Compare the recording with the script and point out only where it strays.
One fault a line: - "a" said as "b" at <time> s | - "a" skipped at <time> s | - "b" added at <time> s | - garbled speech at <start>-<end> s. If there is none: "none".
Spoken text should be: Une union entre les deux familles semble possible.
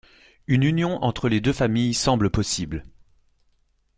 none